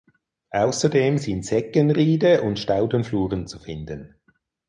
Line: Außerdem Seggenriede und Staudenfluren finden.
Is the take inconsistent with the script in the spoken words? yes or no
yes